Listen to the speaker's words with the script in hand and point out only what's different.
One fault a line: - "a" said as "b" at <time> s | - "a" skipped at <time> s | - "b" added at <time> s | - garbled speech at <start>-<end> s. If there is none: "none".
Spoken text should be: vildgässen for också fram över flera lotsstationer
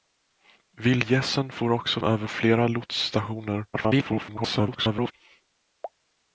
- "fram" skipped at 2.0 s
- garbled speech at 3.7-5.1 s